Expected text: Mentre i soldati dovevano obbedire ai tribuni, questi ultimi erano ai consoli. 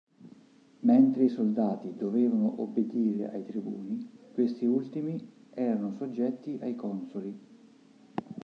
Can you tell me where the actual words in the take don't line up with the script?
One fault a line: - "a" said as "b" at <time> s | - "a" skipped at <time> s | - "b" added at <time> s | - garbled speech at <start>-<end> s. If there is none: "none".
- "soggetti" added at 5.9 s